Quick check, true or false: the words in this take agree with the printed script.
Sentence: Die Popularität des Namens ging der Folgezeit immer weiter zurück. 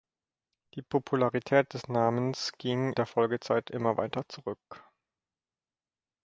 true